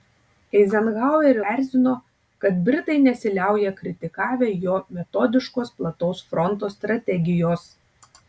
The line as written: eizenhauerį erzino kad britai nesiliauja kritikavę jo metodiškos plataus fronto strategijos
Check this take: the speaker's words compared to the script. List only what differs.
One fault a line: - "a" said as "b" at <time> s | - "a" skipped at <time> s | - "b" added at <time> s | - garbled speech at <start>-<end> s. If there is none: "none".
none